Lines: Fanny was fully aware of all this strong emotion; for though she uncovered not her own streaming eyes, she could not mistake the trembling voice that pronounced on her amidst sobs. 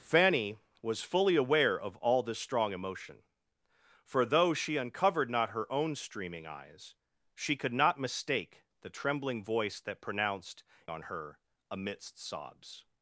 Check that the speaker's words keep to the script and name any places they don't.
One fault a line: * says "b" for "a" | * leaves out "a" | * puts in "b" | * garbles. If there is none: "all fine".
all fine